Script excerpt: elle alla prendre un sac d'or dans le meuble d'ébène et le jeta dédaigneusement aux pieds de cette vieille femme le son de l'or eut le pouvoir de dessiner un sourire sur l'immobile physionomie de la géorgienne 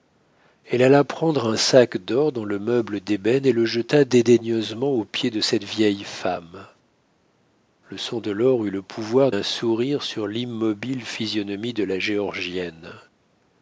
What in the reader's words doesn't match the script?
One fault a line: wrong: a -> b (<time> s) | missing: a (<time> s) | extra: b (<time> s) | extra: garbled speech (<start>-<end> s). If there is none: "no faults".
missing: de dessiner (9.3 s)